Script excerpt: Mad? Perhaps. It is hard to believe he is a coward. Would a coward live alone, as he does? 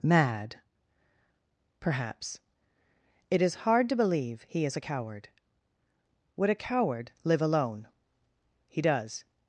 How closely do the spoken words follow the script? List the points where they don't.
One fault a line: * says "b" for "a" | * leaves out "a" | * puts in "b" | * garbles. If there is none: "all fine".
* leaves out "as"